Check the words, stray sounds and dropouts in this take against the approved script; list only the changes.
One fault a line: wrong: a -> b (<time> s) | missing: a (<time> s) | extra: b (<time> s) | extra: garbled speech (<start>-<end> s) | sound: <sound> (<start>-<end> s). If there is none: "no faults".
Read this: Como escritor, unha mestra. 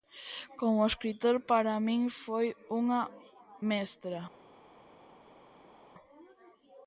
extra: para min foi (1.5 s)